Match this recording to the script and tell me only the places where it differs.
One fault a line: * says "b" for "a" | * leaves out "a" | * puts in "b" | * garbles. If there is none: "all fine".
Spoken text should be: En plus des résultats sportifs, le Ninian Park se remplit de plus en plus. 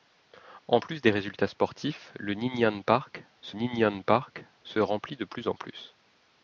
* puts in "Ninian Park se"